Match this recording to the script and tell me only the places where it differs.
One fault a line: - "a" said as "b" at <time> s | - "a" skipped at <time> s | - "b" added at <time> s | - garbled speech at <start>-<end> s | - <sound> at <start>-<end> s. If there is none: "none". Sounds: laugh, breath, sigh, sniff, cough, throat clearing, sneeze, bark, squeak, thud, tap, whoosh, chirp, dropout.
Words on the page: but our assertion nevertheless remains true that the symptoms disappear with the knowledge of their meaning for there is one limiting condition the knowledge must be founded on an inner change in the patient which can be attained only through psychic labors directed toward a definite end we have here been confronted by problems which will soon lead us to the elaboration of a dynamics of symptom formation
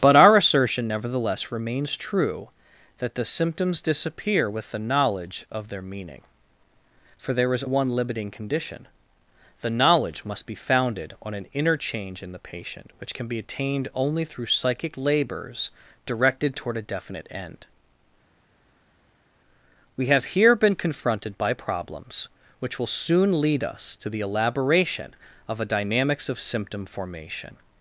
none